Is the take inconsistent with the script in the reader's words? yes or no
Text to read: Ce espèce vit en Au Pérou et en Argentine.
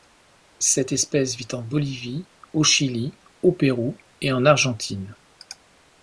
yes